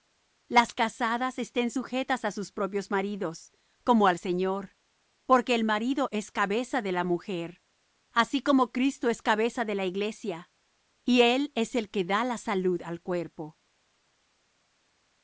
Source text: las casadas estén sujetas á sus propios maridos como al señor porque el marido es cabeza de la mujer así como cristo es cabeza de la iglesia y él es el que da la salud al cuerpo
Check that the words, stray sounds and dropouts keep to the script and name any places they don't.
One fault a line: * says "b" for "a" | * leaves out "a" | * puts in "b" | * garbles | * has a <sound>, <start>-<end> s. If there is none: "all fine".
all fine